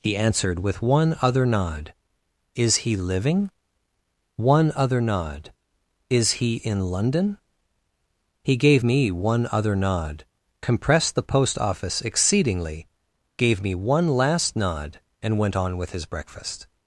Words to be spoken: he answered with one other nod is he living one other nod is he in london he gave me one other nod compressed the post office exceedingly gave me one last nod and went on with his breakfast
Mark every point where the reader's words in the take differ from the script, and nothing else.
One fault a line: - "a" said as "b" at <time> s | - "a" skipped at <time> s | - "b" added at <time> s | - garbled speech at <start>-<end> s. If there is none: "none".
none